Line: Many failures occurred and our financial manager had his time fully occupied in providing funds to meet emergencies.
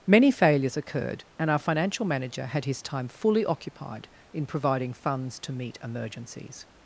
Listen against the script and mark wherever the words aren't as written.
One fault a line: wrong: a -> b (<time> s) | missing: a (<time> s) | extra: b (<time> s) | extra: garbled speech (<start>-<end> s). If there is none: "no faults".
no faults